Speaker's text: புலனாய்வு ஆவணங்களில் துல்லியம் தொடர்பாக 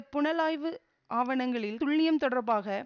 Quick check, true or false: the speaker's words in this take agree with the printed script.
true